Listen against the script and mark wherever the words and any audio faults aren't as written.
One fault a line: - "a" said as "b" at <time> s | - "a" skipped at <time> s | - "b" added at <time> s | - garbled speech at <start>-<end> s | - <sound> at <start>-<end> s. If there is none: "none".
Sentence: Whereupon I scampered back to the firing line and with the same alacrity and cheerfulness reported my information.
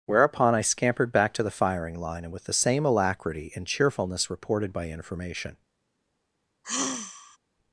- "my" said as "by" at 4.7 s
- sigh at 6.6-7.4 s